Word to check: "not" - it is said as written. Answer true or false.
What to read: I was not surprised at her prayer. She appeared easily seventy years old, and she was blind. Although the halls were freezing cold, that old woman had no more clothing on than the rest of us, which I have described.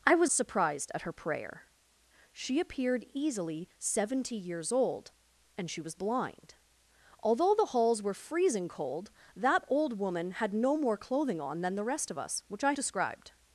false